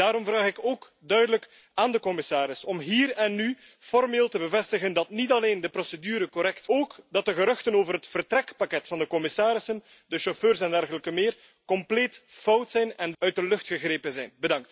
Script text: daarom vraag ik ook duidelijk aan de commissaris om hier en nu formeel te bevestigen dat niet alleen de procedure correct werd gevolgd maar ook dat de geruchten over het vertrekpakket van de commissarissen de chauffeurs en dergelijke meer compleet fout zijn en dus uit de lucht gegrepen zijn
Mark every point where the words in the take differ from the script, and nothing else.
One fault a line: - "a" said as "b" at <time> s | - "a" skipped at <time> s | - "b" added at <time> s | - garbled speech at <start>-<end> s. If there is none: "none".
- "werd gevolgd maar" skipped at 6.7 s
- "dus" skipped at 13.1 s